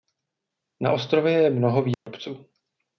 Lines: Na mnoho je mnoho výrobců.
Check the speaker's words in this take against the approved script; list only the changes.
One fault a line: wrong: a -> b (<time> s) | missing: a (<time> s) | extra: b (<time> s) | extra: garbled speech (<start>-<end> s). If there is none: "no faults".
wrong: mnoho -> ostrově (0.9 s)